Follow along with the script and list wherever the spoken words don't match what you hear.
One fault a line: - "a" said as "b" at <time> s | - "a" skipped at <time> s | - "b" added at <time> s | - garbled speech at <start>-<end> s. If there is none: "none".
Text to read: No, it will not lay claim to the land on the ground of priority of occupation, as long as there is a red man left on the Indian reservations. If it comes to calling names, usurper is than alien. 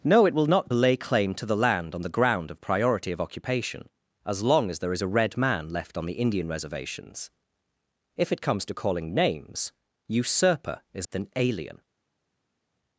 none